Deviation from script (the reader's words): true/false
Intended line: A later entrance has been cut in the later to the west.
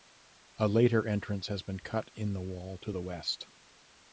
true